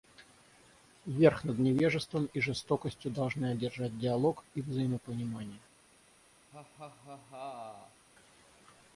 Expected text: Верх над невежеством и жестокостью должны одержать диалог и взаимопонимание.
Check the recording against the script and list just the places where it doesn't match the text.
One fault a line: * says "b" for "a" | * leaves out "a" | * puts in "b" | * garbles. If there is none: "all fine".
all fine